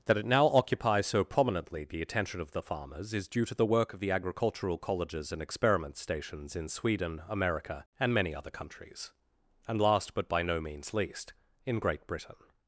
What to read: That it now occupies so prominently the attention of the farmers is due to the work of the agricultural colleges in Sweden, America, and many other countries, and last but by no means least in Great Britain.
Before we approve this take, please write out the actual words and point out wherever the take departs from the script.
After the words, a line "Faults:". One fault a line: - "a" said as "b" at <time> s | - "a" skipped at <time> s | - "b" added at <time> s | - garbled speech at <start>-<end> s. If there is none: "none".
That it now occupies so prominently the attention of the farmers is due to the work of the agricultural colleges and experiment stations in Sweden, America, and many other countries, and last but by no means least in Great Britain.
Faults:
- "and experiment stations" added at 5.3 s